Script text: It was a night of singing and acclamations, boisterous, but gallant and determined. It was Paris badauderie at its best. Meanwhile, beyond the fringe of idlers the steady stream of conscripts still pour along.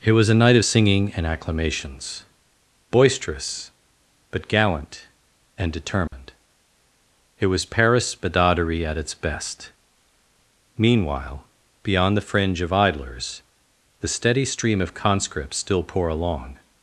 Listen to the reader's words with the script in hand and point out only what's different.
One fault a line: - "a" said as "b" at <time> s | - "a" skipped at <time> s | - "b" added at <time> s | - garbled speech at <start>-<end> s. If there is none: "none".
none